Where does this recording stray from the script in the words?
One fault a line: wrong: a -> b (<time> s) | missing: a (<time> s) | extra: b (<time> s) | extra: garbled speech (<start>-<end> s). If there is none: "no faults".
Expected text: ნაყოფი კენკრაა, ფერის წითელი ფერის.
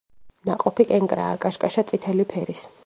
wrong: ფერის -> კაშკაშა (1.5 s)